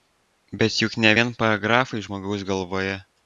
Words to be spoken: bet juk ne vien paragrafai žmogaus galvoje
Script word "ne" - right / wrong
right